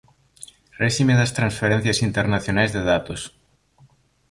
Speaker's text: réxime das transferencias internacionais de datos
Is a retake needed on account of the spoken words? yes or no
no